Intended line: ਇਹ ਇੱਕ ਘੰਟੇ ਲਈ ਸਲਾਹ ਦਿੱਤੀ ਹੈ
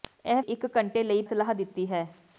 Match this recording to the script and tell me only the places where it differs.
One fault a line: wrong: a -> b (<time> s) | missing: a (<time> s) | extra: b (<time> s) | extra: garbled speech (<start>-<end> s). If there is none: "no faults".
no faults